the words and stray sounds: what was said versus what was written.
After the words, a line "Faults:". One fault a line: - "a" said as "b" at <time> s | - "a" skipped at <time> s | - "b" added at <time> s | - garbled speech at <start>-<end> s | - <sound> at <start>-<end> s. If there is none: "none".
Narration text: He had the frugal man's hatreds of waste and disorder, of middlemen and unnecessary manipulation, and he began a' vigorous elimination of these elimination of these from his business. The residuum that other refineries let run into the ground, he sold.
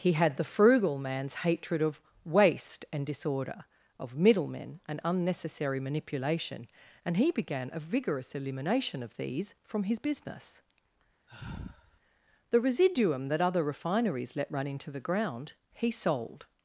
He had the frugal man's hatred of waste and disorder, of middlemen and unnecessary manipulation, and he began a' vigorous elimination of these from his business. The residuum that other refineries let run into the ground, he sold.
Faults:
- "hatreds" said as "hatred" at 1.4 s
- "elimination of these" skipped at 9.5 s
- sigh at 11.3-12.0 s